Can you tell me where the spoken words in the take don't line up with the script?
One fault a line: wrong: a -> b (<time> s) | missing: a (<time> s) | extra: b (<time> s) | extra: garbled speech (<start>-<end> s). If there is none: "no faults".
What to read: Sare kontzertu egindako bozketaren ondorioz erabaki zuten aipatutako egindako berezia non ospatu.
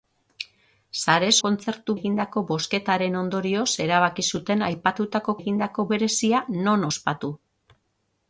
no faults